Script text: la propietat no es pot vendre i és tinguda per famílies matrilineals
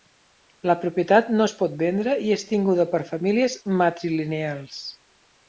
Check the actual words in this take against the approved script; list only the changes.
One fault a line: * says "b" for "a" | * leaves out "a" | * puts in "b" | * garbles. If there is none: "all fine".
all fine